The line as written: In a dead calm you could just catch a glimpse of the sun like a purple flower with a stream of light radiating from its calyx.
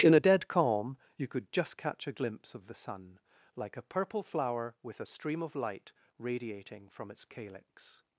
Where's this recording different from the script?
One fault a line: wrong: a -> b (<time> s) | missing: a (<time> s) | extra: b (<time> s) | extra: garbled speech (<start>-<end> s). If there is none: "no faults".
no faults